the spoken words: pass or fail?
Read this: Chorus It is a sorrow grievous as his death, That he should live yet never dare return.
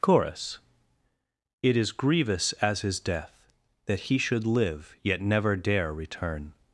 fail